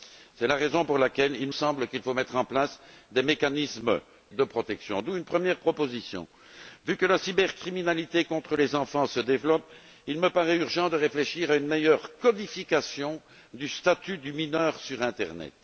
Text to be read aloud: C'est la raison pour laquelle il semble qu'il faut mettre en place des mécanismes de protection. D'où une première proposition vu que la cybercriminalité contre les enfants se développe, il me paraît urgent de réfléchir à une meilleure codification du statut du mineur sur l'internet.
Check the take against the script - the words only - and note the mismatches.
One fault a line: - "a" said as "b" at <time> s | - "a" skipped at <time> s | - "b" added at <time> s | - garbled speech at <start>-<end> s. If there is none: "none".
none